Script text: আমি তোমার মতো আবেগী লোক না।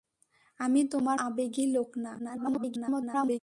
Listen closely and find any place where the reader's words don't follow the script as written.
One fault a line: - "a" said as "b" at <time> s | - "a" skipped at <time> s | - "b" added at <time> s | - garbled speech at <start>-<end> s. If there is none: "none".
- "মতো" skipped at 1.2 s
- garbled speech at 2.2-3.4 s